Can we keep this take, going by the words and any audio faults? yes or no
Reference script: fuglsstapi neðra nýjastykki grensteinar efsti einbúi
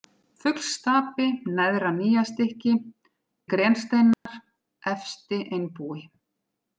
no